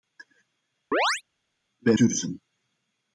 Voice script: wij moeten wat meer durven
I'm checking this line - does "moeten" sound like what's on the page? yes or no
no